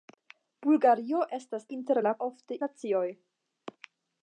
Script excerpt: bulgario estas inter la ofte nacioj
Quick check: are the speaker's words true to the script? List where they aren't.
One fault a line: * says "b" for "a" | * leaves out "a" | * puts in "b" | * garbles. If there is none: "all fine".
all fine